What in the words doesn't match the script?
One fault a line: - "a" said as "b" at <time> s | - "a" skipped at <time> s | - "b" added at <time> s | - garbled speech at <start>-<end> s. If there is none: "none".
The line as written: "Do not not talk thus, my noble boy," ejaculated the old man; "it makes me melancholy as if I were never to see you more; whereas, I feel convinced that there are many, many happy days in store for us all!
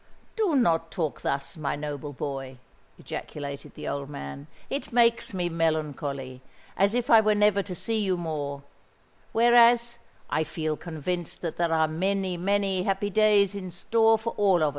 - "not" skipped at 0.9 s